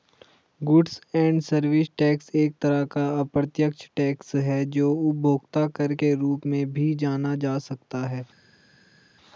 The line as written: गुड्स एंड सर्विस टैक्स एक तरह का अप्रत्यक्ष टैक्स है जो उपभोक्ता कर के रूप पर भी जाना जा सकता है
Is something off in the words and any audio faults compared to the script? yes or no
yes